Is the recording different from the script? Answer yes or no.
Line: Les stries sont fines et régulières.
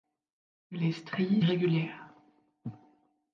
yes